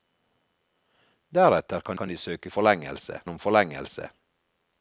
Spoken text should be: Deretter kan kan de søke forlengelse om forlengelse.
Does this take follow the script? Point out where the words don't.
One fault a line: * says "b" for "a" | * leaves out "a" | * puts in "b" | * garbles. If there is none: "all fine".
all fine